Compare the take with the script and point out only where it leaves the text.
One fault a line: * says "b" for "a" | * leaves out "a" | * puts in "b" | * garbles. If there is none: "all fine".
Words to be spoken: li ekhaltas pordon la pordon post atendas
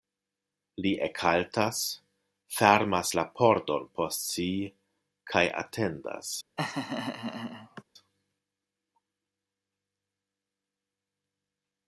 * says "fermas" for "pordon"
* puts in "si kaj"